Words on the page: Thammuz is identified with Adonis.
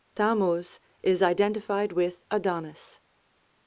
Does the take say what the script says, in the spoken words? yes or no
yes